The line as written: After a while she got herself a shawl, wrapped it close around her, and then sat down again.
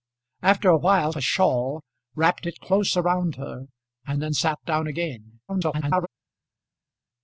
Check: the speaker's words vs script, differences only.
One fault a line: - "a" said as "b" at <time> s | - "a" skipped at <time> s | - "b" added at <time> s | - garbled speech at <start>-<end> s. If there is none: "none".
- "she got herself" skipped at 1.1 s
- garbled speech at 5.5-6.1 s